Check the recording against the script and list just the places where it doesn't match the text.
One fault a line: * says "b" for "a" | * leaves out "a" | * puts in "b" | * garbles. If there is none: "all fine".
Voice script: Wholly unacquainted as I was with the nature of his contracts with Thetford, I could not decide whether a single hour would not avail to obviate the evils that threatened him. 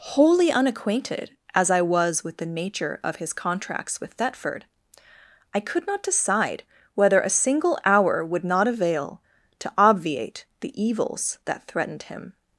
all fine